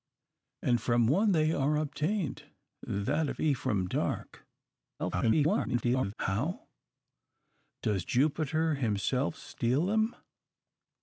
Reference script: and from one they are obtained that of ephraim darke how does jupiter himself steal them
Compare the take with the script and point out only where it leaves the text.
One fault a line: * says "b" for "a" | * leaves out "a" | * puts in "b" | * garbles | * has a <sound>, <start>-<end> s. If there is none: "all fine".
* garbles